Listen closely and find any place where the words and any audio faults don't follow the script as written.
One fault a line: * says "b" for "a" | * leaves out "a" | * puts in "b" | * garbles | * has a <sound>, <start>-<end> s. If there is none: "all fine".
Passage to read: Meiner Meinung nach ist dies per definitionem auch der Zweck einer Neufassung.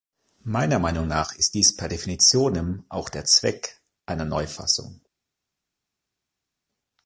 all fine